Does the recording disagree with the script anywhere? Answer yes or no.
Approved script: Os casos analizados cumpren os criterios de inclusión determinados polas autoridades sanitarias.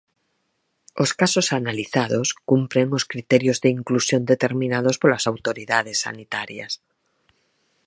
no